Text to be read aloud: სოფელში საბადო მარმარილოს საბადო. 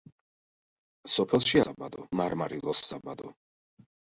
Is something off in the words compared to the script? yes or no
no